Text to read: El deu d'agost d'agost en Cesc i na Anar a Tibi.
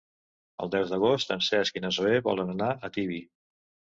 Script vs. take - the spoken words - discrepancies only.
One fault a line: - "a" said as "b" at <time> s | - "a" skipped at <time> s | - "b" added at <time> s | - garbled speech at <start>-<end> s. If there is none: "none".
- "d'agost" skipped at 1.3 s
- "Zoè volen" added at 2.0 s